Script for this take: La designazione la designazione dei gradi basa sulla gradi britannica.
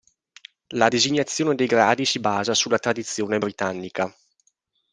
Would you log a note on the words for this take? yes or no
yes